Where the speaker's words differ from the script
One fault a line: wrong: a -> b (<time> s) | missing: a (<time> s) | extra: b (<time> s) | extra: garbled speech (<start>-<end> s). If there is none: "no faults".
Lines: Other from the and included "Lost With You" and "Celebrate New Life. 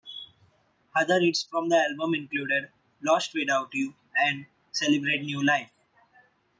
extra: hits (1.2 s)
wrong: and -> album (1.8 s)
wrong: With -> Without (3.4 s)